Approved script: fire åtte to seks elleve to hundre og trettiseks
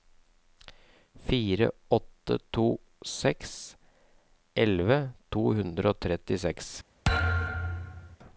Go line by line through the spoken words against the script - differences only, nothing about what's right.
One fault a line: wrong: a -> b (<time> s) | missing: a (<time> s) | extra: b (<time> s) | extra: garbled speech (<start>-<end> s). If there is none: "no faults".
no faults